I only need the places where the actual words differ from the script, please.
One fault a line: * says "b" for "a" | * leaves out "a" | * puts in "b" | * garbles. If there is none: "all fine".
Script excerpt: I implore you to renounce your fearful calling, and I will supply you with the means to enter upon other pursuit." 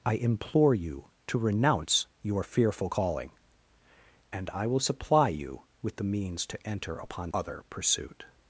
all fine